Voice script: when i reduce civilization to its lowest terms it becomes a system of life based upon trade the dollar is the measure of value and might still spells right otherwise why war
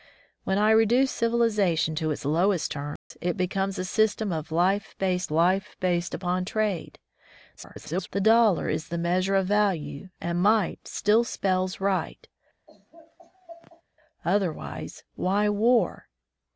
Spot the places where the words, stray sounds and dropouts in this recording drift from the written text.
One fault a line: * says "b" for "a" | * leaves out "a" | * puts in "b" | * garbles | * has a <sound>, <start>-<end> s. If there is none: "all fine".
* has a dropout, 3.0-3.1 s
* puts in "life based"
* garbles
* has a laugh, 12.7-13.8 s